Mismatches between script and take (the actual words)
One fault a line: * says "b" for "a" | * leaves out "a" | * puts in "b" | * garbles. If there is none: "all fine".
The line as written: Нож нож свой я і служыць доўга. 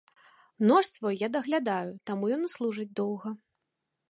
* leaves out "нож"
* puts in "даглядаю таму ён"